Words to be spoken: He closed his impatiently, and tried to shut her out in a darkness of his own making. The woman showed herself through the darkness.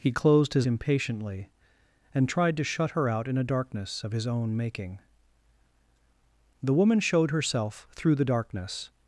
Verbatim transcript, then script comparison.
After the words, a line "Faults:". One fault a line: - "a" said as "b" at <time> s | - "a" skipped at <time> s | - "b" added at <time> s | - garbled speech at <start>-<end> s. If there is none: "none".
He closed his impatiently, and tried to shut her out in a darkness of his own making. The woman showed herself through the darkness.
Faults:
none